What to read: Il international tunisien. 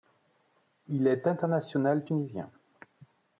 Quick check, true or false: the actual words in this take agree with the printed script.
false